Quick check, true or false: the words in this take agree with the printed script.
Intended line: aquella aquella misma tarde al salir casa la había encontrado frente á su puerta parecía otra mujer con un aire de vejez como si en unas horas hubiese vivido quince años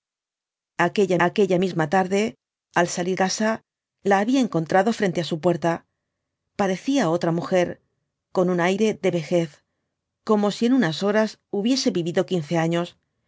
true